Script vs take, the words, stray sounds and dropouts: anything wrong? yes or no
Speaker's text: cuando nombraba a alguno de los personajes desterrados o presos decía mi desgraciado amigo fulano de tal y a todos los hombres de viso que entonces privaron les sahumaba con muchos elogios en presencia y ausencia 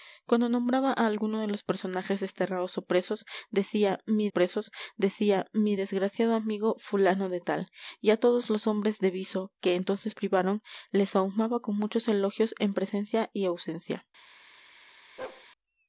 yes